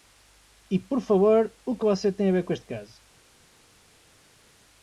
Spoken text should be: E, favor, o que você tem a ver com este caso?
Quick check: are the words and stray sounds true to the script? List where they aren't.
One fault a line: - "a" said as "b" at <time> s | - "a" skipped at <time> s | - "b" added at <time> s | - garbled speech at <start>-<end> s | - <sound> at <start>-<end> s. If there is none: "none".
- "por" added at 0.8 s